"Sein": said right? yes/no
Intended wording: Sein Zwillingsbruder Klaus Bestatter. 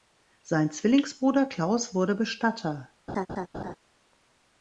yes